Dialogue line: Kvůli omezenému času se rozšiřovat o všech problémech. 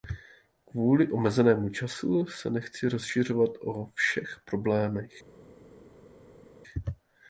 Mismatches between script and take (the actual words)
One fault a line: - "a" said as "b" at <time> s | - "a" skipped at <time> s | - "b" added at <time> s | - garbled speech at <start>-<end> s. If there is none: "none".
- "nechci" added at 2.5 s